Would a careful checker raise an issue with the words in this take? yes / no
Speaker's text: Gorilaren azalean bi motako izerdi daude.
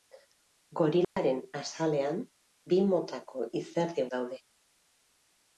no